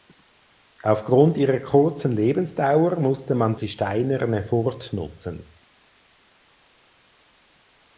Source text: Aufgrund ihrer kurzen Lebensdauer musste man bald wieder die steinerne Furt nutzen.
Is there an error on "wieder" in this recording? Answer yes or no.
yes